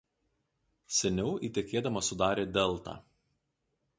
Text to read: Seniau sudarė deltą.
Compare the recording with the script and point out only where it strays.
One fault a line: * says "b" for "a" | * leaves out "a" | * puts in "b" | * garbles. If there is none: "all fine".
* puts in "įtekėdama"